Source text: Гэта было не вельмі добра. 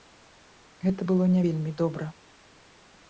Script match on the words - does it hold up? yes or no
yes